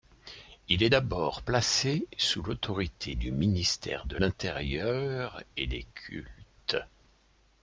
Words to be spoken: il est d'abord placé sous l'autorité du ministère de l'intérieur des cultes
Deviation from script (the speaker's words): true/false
true